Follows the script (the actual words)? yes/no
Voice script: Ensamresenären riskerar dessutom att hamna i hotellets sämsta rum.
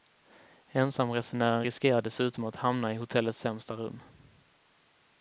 yes